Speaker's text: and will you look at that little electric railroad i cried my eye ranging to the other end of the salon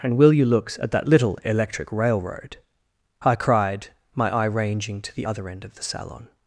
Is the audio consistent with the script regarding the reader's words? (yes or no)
no